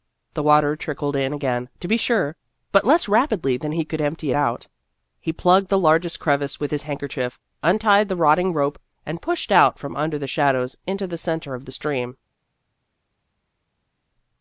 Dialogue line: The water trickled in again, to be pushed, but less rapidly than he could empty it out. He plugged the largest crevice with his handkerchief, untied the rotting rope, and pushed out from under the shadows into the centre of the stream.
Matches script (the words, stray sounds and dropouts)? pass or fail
fail